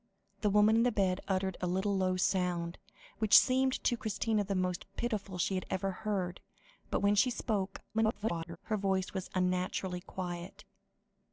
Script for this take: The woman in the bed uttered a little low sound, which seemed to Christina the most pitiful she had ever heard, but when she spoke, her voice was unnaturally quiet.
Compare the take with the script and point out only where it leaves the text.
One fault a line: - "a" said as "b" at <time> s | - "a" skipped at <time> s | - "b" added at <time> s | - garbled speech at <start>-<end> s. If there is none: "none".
- garbled speech at 7.9-8.6 s